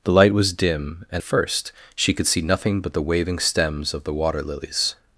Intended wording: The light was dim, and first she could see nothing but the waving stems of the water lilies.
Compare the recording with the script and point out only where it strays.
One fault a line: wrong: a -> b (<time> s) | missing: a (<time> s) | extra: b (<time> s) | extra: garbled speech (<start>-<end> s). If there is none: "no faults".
no faults